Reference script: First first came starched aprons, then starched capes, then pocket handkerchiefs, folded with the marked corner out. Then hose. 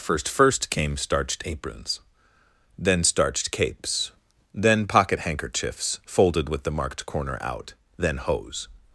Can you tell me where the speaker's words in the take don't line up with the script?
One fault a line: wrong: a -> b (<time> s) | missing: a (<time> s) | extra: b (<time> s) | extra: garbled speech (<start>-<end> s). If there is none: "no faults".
no faults